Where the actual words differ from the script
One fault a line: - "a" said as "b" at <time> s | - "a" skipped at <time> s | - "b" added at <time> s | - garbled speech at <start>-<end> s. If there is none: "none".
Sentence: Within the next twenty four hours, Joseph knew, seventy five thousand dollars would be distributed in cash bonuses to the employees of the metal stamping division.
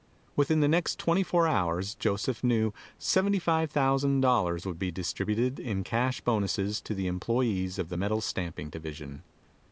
none